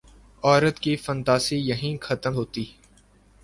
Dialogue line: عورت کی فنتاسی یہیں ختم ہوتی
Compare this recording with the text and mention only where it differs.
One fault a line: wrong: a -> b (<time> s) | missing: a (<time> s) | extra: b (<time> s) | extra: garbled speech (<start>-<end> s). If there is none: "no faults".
no faults